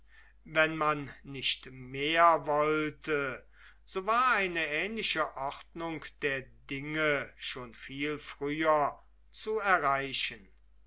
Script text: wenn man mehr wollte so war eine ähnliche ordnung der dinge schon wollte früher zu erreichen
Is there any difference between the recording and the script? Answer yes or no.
yes